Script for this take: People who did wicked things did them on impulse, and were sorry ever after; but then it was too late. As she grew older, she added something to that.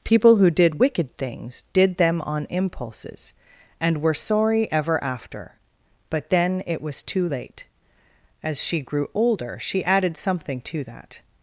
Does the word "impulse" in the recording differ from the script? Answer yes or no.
yes